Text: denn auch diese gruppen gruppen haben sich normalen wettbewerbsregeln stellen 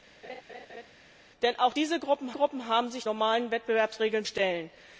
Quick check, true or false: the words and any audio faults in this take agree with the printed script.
false